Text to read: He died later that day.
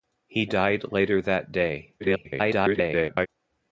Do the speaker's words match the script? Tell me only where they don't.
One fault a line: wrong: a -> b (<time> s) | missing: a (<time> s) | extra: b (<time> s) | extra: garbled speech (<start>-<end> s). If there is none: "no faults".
extra: garbled speech (2.0-3.3 s)